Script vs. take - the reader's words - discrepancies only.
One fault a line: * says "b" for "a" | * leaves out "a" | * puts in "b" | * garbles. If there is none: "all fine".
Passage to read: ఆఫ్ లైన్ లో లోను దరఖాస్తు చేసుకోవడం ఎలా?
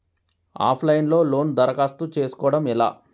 all fine